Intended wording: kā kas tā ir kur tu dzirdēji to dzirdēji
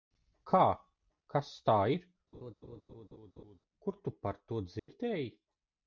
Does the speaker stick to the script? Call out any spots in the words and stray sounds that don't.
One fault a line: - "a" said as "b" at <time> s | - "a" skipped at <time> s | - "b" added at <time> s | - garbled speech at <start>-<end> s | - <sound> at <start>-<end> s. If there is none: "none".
- laugh at 2.3-3.6 s
- "dzirdēji" said as "par" at 4.3 s
- dropout at 4.8-4.9 s